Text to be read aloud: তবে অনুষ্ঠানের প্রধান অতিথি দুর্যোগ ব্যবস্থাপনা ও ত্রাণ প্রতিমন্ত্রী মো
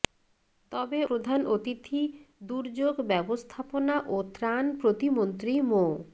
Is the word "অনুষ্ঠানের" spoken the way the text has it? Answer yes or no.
no